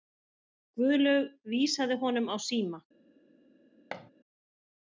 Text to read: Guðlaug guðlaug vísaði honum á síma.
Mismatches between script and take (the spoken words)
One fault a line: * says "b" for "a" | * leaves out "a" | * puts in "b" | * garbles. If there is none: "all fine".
* leaves out "guðlaug"